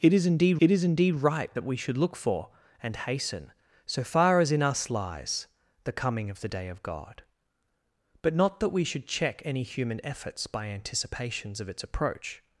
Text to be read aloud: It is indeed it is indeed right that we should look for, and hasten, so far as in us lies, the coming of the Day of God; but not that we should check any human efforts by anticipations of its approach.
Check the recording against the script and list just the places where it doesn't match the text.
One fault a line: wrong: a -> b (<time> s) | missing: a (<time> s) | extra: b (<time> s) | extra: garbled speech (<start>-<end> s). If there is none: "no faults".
no faults